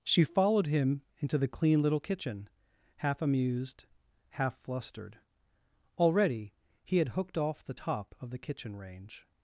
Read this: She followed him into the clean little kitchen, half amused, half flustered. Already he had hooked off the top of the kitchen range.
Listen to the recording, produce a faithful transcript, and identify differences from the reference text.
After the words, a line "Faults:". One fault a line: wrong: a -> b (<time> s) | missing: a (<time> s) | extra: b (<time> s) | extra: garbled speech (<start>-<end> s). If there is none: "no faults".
She followed him into the clean little kitchen, half amused, half flustered. Already he had hooked off the top of the kitchen range.
Faults:
no faults